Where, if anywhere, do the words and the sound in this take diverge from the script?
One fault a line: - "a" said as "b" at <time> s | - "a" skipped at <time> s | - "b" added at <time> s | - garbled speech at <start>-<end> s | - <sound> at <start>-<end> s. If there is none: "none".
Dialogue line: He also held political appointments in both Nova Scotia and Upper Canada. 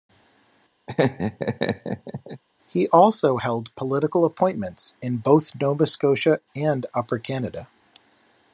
- laugh at 0.9-2.4 s